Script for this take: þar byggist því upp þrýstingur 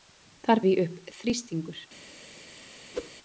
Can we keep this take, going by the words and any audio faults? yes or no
no